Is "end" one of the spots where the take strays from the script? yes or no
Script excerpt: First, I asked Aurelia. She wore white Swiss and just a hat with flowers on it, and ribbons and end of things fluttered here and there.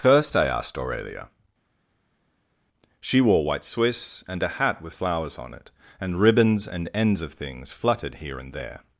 yes